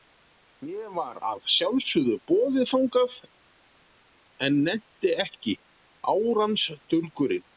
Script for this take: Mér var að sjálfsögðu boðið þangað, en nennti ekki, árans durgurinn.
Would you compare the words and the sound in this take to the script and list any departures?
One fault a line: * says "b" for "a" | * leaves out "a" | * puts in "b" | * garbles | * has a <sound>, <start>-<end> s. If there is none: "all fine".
all fine